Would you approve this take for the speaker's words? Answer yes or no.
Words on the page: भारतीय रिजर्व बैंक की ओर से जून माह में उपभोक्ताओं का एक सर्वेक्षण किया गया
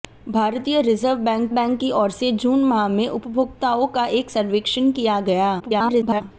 no